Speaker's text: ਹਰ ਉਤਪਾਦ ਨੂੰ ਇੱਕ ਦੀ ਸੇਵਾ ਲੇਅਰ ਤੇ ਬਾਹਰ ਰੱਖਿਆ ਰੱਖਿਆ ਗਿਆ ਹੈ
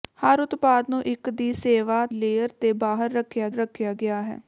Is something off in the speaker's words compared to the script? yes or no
no